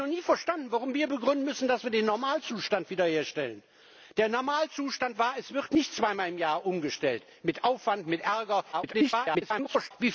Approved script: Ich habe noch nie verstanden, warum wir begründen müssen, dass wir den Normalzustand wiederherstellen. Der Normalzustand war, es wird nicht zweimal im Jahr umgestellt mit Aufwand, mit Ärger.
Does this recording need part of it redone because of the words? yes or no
yes